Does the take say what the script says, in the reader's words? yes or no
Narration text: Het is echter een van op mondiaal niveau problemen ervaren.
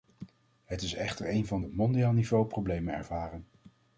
yes